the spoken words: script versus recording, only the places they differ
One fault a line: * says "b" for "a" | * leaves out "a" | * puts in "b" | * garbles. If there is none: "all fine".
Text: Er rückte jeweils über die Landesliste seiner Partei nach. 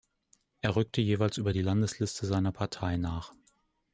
all fine